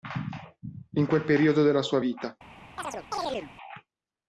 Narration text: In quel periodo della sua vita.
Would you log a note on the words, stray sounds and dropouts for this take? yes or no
yes